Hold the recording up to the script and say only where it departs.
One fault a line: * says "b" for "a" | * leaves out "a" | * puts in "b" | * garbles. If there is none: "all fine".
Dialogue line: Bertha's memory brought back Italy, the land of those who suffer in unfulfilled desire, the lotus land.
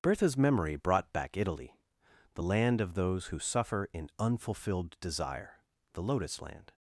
all fine